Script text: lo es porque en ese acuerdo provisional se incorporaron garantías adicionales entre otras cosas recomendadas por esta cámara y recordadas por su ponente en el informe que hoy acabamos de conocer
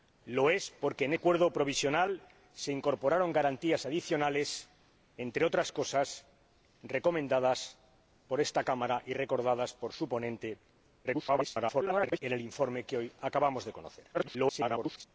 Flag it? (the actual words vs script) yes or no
yes